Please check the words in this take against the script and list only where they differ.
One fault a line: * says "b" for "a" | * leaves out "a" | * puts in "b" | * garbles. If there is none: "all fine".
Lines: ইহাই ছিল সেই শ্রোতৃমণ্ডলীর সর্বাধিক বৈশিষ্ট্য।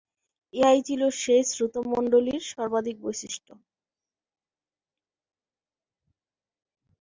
all fine